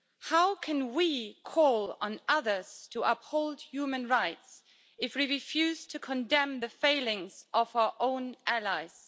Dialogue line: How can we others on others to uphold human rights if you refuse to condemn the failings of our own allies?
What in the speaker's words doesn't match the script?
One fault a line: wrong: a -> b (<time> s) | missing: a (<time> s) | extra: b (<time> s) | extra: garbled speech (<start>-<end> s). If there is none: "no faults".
wrong: others -> call (1.4 s)
wrong: you -> we (5.2 s)